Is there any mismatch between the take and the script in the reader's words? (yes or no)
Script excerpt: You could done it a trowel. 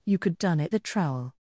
no